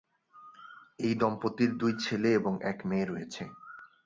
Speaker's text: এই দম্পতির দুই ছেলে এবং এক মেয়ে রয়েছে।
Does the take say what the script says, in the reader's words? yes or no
yes